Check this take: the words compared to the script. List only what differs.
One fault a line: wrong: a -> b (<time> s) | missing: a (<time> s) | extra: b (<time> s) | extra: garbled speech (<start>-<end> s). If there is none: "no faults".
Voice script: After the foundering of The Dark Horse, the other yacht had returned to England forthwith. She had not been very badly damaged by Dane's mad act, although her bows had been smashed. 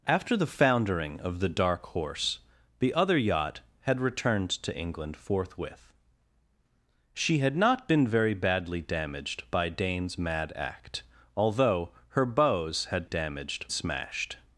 wrong: been -> damaged (13.0 s)